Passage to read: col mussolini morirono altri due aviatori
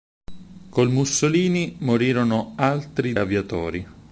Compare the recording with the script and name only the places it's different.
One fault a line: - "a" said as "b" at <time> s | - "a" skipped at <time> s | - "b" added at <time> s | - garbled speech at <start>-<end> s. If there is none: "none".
- "due" skipped at 3.1 s